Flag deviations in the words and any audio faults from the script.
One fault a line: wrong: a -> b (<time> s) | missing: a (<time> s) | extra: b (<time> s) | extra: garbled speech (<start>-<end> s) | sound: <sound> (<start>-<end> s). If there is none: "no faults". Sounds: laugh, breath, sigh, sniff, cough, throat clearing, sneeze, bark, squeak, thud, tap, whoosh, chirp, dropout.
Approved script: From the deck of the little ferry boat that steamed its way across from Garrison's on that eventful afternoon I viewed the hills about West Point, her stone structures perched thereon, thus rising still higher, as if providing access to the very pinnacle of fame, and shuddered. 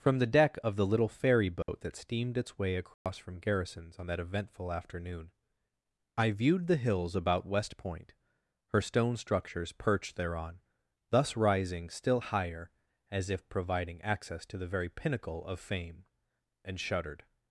sound: dropout (1.6-1.7 s)
sound: dropout (2.9-3.1 s)